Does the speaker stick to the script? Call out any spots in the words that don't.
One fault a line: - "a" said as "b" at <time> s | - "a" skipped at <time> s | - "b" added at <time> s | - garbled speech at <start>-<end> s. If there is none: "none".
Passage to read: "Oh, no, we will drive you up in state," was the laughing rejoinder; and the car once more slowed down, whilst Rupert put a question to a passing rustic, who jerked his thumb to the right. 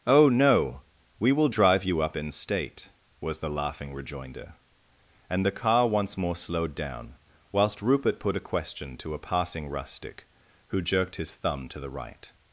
none